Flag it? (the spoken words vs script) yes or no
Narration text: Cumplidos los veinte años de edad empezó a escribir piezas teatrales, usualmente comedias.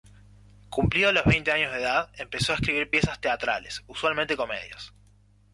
no